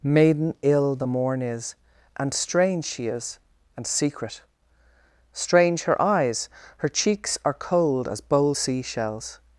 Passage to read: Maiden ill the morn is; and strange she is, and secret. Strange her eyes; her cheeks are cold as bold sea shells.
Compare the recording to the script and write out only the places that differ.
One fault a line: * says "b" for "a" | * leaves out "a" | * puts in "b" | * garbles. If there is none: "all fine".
all fine